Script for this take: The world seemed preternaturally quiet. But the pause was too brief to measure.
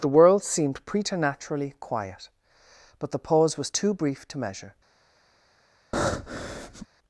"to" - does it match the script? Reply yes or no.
yes